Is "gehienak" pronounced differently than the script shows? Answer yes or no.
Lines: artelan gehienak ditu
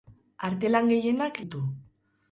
no